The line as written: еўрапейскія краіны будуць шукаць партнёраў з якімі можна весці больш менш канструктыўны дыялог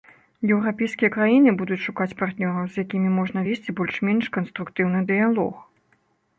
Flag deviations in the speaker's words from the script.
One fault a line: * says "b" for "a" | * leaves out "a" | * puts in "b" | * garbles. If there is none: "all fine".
all fine